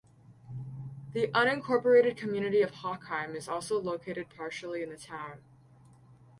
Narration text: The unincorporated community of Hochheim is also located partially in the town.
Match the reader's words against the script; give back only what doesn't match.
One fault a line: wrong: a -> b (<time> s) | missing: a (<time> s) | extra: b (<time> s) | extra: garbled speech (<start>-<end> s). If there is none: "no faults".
no faults